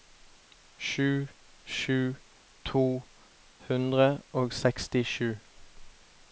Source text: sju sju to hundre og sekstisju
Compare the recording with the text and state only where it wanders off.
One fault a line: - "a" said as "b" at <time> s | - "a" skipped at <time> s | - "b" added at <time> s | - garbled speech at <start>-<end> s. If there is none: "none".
none